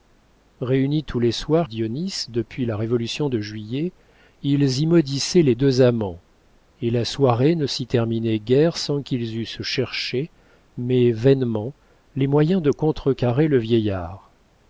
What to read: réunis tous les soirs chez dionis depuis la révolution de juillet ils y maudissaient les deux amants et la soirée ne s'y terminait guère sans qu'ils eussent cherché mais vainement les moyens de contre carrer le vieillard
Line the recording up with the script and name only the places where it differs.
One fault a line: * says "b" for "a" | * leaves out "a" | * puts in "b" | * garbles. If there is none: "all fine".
* leaves out "chez"